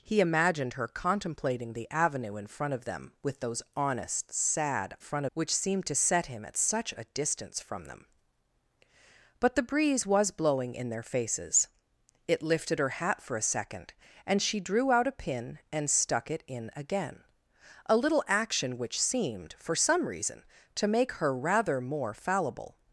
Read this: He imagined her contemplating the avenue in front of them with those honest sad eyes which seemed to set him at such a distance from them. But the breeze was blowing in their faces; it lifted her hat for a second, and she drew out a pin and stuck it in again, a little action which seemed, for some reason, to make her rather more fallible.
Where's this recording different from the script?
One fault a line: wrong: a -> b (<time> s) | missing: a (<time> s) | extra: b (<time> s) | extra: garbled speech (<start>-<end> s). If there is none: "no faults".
wrong: eyes -> front (5.0 s)